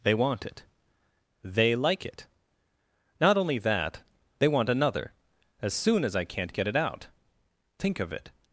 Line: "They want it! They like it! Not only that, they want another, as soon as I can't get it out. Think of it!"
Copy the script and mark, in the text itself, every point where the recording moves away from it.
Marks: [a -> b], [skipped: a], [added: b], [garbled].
"They want it! They like it! Not only that, they want another, as soon as I can't get it out. Think of it!"